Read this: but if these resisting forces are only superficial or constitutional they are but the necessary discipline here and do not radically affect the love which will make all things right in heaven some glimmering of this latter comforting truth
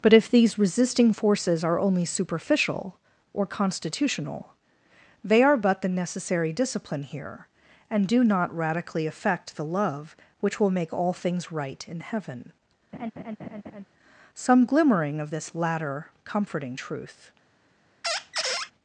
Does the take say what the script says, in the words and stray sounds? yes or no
no